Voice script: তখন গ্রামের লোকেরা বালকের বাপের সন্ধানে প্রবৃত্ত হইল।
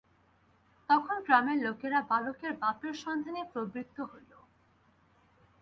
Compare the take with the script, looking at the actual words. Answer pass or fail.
pass